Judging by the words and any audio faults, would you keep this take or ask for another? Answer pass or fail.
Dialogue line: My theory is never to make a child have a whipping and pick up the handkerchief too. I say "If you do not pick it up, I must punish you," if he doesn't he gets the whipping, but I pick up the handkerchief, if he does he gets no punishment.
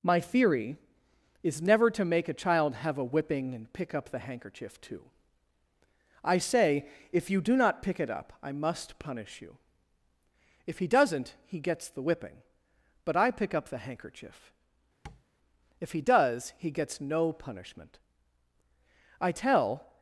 fail